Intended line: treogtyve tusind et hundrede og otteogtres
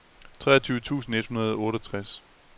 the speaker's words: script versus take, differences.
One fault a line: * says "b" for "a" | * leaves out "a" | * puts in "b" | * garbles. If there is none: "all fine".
all fine